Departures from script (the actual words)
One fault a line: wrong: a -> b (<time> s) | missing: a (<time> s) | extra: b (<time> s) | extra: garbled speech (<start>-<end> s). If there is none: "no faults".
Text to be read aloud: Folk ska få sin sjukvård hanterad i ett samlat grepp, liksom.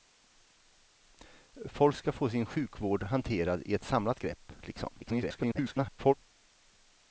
extra: garbled speech (5.0-6.1 s)